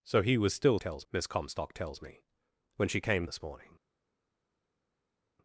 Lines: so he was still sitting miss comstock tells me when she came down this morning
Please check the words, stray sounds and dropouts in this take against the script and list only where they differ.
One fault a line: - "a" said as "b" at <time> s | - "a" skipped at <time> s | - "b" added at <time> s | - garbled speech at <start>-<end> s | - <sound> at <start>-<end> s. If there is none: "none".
- "sitting" said as "tells" at 0.8 s
- "down" skipped at 3.3 s